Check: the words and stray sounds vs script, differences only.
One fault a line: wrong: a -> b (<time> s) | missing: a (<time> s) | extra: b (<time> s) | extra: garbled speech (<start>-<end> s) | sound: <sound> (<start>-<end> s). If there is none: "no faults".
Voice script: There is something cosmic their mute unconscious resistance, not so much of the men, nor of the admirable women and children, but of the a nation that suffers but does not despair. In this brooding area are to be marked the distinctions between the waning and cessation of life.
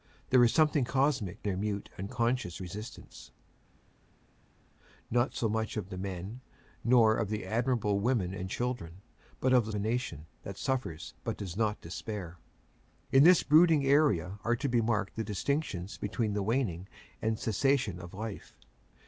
no faults